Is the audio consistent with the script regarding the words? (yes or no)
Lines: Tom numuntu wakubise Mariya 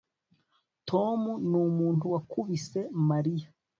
yes